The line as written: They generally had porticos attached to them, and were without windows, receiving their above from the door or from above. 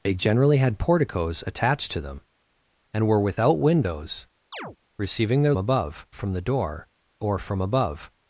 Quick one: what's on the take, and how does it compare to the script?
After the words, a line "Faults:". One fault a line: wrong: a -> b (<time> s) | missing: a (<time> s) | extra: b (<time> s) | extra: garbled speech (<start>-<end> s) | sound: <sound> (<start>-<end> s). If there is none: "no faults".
They generally had porticos attached to them, and were without windows, receiving their above from the door or from above.
Faults:
sound: chirp (4.5-4.8 s)